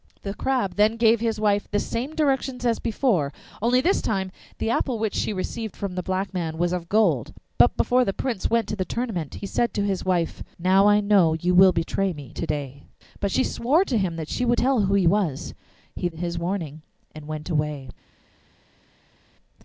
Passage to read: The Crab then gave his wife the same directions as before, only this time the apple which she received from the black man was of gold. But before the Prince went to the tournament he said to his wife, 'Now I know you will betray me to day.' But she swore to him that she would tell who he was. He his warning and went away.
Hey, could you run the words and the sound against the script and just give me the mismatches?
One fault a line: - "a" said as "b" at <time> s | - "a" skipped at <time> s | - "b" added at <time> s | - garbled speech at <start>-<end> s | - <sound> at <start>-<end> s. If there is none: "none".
none